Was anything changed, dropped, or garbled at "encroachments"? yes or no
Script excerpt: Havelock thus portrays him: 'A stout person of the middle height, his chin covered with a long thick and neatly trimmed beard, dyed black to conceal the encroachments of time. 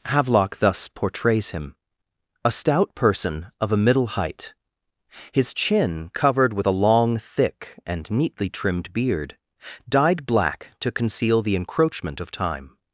yes